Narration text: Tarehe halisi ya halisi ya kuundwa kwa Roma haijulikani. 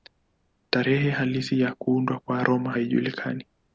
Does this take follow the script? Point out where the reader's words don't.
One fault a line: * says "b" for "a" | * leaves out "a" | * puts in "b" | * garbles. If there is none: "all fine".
* leaves out "halisi ya"